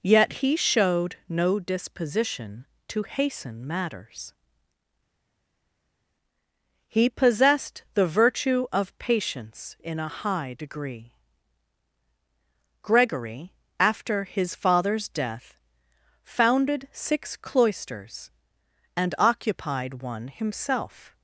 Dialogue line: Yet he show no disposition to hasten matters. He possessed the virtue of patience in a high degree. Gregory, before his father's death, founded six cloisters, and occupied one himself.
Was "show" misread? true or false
true